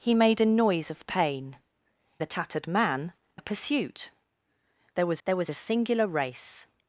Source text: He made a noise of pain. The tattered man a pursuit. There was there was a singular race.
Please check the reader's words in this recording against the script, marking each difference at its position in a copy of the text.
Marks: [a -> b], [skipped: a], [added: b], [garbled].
He made a noise of pain. The tattered man a pursuit. There was there was a singular race.